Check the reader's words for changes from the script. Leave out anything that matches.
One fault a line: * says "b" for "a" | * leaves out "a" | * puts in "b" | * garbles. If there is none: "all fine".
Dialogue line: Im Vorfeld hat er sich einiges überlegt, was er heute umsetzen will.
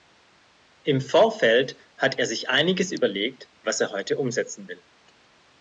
all fine